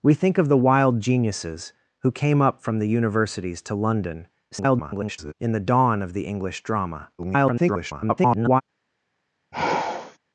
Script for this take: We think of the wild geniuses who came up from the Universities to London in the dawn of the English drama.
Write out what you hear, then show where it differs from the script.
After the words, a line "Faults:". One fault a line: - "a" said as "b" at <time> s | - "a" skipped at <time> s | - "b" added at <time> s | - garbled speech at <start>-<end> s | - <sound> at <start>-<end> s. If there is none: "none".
We think of the wild geniuses who came up from the Universities to London [garbled] in the dawn of the English drama. [garbled]
Faults:
- garbled speech at 4.5-5.3 s
- garbled speech at 7.2-8.6 s
- sigh at 9.5-10.2 s